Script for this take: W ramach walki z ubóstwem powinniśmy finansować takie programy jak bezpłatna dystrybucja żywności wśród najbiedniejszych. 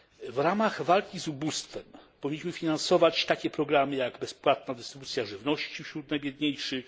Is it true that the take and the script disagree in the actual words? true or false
false